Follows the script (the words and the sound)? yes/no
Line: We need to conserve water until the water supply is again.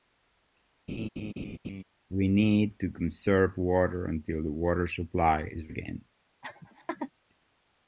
no